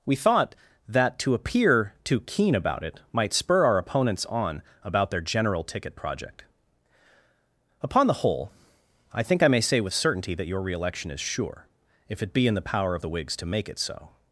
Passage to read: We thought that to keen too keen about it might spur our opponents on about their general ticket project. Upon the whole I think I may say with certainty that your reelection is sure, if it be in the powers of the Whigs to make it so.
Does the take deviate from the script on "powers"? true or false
true